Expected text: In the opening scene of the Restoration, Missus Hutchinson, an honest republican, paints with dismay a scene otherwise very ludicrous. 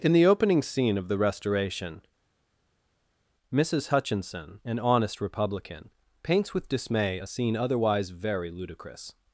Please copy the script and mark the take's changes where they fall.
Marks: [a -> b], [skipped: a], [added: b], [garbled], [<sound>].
In the opening scene of the Restoration, Missus Hutchinson, an honest republican, paints with dismay a scene otherwise very ludicrous.